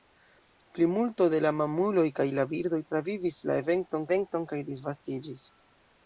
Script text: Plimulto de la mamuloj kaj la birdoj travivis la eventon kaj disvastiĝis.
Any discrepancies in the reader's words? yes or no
yes